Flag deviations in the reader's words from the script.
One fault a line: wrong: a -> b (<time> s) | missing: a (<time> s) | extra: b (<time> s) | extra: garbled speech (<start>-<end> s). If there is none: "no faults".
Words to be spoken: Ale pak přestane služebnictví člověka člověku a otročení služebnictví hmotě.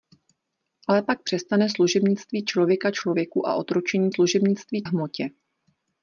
no faults